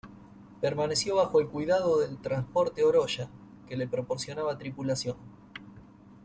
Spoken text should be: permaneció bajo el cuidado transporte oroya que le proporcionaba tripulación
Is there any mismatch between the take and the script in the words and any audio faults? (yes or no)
yes